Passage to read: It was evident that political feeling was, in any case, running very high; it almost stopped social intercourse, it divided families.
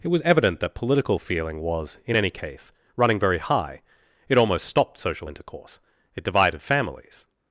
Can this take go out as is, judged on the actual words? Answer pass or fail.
pass